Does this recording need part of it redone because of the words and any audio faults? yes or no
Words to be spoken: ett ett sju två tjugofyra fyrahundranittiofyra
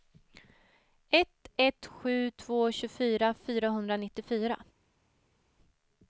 no